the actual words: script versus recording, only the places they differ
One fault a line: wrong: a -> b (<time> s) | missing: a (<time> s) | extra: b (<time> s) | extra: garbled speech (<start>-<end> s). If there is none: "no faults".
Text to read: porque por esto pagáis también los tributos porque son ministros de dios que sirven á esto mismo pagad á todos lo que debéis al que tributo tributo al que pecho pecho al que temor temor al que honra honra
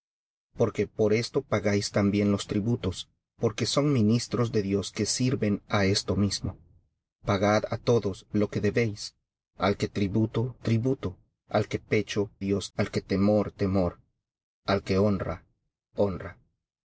wrong: pecho -> dios (12.4 s)